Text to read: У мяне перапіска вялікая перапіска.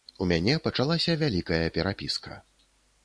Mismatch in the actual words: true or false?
true